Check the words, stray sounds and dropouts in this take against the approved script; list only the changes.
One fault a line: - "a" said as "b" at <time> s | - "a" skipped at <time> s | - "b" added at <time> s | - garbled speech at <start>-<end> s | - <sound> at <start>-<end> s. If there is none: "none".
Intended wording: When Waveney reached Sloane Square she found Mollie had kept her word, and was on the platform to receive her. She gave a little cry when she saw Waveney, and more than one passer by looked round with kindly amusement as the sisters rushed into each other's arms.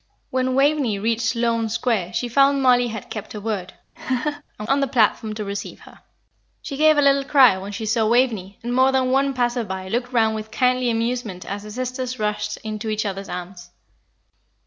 - laugh at 4.0-4.4 s
- "was" skipped at 4.7 s